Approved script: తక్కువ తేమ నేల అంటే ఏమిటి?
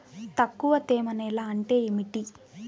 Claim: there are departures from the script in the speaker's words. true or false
false